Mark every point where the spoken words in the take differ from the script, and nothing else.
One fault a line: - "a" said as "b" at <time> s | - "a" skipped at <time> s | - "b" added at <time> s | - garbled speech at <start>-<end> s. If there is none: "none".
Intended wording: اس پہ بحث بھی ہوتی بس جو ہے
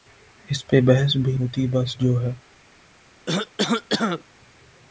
none